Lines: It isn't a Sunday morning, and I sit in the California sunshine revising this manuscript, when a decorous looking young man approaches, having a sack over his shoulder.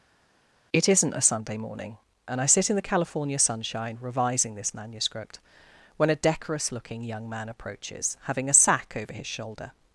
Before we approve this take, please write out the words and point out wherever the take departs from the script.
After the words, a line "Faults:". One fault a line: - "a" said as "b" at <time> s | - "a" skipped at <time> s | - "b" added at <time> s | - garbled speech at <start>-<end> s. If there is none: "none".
It isn't a Sunday morning, and I sit in the California sunshine revising this manuscript, when a decorous looking young man approaches, having a sack over his shoulder.
Faults:
none